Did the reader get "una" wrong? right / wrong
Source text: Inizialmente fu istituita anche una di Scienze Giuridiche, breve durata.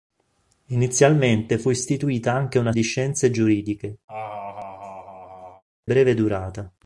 right